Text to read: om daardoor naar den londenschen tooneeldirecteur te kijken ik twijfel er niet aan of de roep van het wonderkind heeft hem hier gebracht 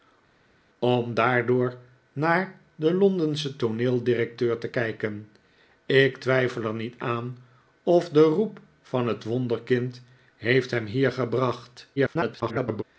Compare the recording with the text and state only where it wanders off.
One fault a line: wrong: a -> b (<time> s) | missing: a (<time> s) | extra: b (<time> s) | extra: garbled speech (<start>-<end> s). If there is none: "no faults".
extra: garbled speech (12.0-12.8 s)